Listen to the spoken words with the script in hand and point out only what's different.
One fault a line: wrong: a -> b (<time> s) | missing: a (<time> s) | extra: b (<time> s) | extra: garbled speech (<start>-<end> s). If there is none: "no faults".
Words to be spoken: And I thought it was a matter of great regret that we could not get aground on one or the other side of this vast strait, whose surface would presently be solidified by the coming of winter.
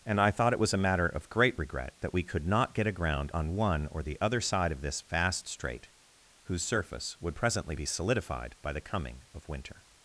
no faults